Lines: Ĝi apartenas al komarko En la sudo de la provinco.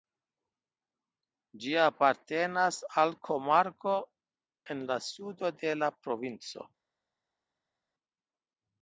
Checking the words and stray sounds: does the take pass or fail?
pass